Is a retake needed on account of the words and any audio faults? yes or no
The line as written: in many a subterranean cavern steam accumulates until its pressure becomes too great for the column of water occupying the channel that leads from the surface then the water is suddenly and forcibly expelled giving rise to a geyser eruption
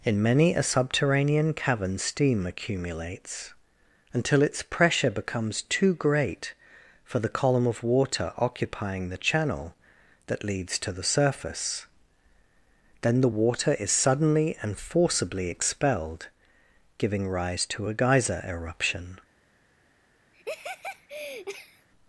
yes